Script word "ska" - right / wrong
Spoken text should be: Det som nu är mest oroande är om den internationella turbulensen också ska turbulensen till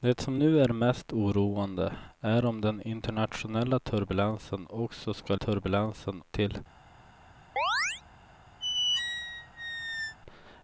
right